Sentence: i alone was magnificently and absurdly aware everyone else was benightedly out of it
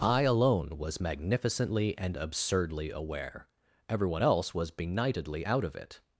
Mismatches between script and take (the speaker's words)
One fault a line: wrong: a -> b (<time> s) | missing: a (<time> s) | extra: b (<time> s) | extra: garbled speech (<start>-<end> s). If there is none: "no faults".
no faults